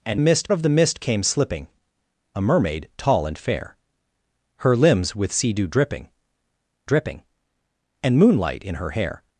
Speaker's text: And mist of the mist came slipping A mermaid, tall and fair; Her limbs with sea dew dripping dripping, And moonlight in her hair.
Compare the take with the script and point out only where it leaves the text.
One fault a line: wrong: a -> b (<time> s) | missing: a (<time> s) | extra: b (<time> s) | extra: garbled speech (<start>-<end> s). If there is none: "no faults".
no faults